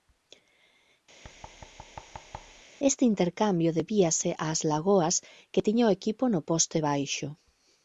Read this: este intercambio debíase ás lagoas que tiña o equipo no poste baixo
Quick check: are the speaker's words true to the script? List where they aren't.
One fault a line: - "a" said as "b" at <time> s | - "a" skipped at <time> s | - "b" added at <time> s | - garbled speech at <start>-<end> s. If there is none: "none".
none